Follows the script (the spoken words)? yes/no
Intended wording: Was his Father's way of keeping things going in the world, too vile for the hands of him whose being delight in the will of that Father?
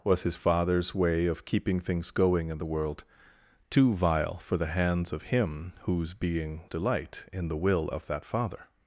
yes